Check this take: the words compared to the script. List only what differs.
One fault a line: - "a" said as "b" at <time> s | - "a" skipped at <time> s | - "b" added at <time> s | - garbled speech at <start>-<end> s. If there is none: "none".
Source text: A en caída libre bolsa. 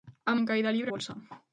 none